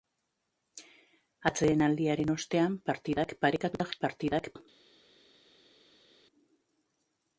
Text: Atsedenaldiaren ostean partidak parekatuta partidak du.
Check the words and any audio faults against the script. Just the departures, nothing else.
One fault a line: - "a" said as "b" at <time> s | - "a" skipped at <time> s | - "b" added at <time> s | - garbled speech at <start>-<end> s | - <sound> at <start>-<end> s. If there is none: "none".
none